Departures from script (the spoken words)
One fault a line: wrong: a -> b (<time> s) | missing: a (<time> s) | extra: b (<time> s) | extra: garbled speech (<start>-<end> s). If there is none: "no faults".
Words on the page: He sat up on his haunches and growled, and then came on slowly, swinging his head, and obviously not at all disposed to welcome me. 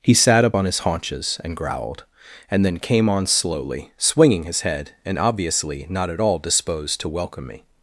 no faults